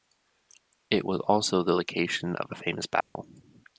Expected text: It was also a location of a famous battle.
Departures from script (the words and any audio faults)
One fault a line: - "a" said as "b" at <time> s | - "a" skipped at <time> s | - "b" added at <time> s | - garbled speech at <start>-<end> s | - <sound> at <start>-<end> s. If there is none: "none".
- "a" said as "the" at 1.6 s
- dropout at 3.0-3.2 s